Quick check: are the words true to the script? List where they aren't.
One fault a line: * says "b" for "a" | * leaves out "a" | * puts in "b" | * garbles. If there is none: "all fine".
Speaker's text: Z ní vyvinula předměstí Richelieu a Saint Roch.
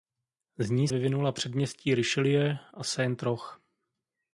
all fine